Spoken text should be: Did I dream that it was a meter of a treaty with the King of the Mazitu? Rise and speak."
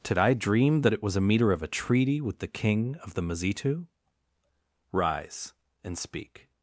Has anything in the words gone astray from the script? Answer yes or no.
no